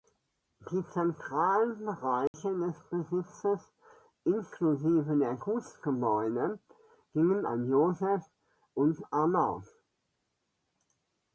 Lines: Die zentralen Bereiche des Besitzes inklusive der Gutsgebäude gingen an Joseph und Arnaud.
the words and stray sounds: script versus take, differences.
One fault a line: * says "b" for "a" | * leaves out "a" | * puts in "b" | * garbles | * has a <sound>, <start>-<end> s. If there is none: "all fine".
* has a dropout, 2.3-2.3 s